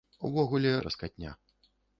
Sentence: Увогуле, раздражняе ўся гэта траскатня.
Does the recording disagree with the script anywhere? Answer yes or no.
yes